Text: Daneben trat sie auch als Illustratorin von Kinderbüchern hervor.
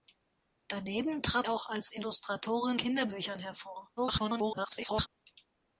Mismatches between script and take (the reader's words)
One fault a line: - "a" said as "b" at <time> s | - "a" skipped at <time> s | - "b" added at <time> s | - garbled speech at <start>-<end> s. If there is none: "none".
- "sie" skipped at 1.5 s
- "von" skipped at 2.8 s
- garbled speech at 4.0-5.1 s